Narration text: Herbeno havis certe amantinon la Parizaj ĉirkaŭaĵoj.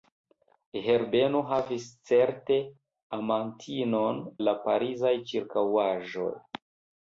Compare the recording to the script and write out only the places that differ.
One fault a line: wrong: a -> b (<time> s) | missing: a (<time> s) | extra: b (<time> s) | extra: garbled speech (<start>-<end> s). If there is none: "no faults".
no faults